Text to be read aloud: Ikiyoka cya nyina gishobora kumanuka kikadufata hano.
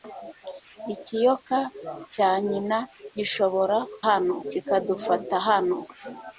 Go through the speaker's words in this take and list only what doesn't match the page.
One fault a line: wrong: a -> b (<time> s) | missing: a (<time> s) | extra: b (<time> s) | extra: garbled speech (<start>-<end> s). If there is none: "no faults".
wrong: kumanuka -> hano (4.1 s)